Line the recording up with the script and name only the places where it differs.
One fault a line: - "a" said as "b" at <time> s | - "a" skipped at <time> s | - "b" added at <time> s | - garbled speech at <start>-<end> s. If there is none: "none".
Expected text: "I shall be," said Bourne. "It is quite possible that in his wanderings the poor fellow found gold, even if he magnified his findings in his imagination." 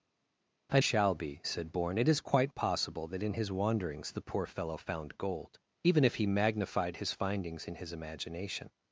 none